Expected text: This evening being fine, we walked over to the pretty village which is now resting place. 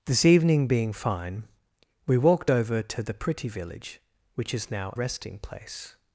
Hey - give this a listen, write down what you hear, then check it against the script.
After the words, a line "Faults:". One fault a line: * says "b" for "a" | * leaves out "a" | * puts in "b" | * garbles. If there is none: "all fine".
This evening being fine, we walked over to the pretty village which is now resting place.
Faults:
all fine